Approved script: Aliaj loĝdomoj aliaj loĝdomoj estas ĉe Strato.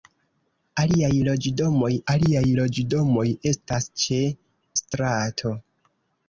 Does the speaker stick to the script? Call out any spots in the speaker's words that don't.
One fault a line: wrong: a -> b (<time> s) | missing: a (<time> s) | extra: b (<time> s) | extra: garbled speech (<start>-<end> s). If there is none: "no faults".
no faults